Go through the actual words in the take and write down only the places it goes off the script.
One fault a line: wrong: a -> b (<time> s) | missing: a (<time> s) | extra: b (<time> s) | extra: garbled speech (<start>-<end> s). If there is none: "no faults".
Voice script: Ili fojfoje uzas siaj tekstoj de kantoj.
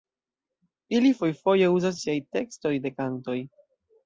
no faults